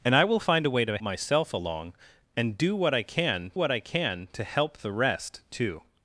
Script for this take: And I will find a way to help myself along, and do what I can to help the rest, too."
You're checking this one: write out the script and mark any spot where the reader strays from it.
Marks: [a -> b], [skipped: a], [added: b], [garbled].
And I will find a way to [skipped: help] myself along, and do what I can [added: what I can] to help the rest, too."